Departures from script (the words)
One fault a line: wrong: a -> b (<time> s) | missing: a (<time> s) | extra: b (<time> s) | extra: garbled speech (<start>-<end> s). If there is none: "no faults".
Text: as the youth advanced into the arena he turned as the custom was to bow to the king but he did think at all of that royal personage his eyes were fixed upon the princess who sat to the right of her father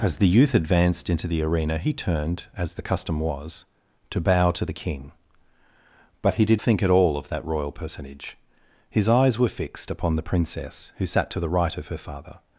no faults